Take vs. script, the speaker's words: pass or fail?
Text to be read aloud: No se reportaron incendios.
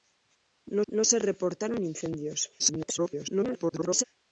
fail